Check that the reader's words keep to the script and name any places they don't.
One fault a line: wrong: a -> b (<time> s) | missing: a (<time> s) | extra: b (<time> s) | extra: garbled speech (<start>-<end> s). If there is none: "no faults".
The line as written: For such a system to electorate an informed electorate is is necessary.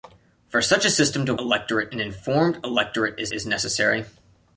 no faults